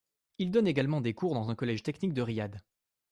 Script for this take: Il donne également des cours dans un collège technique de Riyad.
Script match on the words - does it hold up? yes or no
yes